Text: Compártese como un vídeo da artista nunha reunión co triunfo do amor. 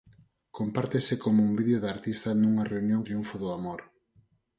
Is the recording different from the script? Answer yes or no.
yes